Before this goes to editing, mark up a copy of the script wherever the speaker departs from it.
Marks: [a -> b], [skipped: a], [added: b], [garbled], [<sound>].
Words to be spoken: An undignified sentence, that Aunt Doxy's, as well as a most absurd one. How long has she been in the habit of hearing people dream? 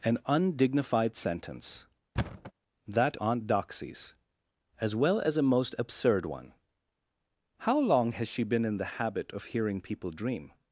An undignified sentence, [thud] that Aunt Doxy's, as well as a most absurd one. How long has she been in the habit of hearing people dream?